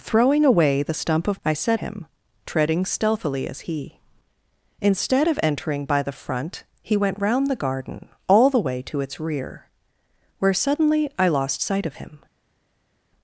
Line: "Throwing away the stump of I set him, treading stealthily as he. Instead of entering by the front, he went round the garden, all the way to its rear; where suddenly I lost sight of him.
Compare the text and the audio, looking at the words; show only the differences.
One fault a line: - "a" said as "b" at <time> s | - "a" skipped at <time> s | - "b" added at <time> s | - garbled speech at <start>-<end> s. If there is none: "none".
none